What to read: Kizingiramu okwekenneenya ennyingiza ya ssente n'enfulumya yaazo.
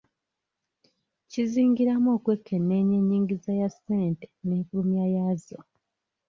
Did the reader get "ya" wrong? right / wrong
right